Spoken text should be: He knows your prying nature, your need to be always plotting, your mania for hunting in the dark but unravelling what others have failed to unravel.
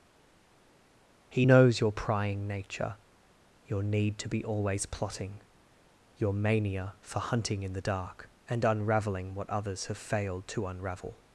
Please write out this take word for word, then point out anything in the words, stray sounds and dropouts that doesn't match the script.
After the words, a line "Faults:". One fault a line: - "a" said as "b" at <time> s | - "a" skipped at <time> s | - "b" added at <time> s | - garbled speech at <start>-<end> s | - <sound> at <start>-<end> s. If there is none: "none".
He knows your prying nature, your need to be always plotting, your mania for hunting in the dark and unravelling what others have failed to unravel.
Faults:
- "but" said as "and" at 8.5 s